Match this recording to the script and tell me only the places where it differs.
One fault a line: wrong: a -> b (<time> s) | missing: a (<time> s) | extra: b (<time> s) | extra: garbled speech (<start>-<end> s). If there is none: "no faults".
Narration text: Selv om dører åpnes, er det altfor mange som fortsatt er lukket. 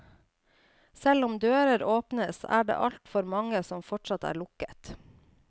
no faults